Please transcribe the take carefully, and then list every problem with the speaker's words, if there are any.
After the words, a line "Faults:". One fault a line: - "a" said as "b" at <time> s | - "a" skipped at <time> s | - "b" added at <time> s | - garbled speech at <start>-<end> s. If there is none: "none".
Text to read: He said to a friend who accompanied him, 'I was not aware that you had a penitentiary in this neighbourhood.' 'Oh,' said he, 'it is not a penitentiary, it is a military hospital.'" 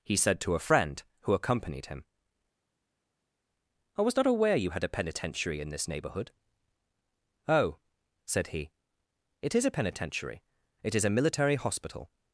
He said to a friend who accompanied him, 'I was not aware you had a penitentiary in this neighbourhood.' 'Oh,' said he, 'it is a penitentiary, it is a military hospital.'"
Faults:
- "that" skipped at 4.6 s
- "not" skipped at 9.6 s